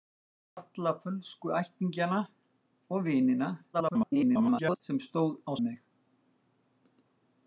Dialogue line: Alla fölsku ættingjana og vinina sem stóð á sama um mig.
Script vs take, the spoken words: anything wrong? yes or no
yes